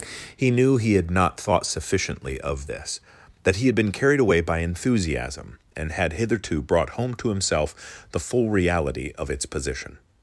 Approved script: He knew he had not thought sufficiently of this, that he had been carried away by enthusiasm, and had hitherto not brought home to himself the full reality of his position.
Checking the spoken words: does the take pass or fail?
fail